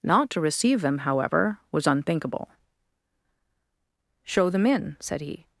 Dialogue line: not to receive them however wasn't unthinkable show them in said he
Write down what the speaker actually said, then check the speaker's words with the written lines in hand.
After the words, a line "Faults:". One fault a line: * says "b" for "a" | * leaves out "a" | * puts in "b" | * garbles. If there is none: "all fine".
not to receive them however was unthinkable show them in said he
Faults:
* says "was" for "wasn't"